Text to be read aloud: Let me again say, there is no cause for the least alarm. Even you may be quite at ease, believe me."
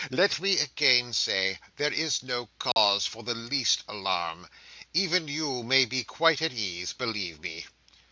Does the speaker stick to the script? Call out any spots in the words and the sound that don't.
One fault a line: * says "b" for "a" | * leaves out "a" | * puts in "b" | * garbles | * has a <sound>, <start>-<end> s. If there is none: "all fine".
* has a dropout, 2.7-2.8 s